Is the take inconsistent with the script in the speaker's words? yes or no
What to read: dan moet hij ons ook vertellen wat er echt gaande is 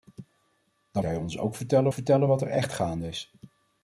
yes